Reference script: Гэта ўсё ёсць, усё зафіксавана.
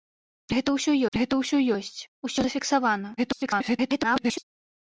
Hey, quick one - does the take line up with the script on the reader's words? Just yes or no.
no